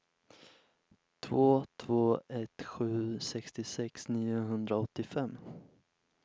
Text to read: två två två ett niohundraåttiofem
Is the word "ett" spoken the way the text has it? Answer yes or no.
no